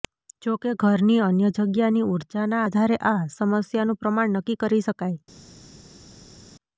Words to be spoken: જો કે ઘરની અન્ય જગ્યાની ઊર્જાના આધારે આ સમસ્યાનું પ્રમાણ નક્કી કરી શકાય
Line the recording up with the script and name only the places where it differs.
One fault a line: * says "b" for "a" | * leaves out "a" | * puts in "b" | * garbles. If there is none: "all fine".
all fine